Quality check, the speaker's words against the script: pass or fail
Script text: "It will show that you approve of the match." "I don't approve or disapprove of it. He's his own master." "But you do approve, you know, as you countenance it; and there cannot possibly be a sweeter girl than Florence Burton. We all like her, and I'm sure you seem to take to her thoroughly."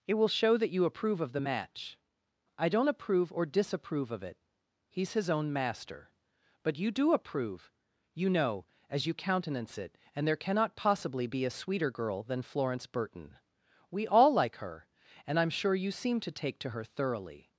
pass